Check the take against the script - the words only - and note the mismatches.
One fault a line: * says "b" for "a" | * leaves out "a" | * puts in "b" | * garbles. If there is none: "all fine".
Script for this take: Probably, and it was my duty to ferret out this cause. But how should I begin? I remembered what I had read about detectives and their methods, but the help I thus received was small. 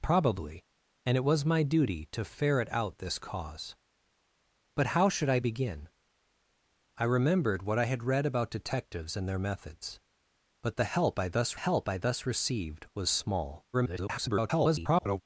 * puts in "help I thus"
* garbles